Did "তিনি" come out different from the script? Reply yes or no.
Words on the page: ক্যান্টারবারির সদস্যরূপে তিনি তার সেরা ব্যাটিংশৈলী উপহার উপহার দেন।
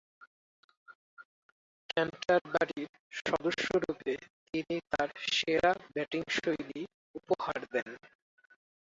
no